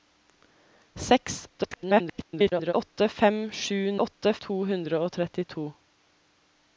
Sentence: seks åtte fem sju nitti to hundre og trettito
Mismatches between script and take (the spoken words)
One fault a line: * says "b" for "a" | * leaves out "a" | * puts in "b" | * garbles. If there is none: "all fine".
* garbles
* says "åtte" for "nitti"